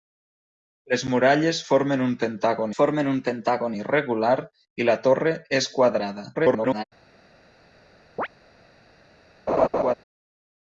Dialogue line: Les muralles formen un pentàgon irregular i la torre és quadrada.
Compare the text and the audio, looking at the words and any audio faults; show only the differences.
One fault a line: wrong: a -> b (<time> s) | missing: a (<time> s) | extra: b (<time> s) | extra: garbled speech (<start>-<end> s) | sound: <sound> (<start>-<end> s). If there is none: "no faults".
extra: formen un pentàgon (2.8 s)
extra: garbled speech (6.3-6.8 s)
sound: chirp (8.2-8.3 s)
sound: laugh (9.5-9.9 s)